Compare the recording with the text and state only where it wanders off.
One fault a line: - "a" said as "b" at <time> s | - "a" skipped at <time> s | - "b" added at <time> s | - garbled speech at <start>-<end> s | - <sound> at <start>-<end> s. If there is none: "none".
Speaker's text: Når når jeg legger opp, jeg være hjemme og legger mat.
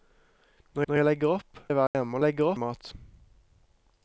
- dropout at 1.9-1.9 s